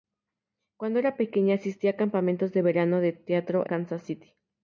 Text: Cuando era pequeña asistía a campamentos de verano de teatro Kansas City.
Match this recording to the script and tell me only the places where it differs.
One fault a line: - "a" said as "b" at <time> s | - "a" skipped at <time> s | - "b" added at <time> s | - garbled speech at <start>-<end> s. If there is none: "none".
none